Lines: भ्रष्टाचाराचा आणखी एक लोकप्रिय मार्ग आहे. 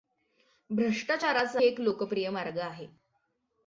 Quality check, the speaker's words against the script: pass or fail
fail